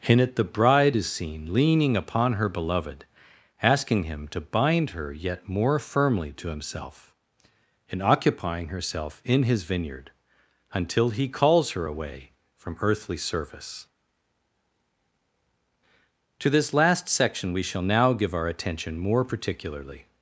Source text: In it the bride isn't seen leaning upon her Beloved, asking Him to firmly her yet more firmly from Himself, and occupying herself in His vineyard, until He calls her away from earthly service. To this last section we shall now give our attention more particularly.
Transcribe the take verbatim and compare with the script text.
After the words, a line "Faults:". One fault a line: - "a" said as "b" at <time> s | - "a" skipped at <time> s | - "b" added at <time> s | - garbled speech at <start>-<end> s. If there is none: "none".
In it the bride is seen leaning upon her Beloved, asking Him to bind her yet more firmly to Himself, and occupying herself in His vineyard, until He calls her away from earthly service. To this last section we shall now give our attention more particularly.
Faults:
- "isn't" said as "is" at 1.0 s
- "firmly" said as "bind" at 4.4 s
- "from" said as "to" at 6.3 s